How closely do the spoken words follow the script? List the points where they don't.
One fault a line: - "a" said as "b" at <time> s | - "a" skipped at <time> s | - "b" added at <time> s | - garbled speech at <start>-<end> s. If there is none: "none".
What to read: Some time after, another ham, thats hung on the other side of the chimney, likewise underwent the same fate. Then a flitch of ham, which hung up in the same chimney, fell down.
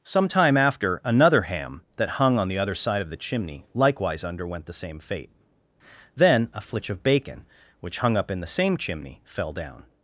- "thats" said as "that" at 2.0 s
- "ham" said as "bacon" at 7.0 s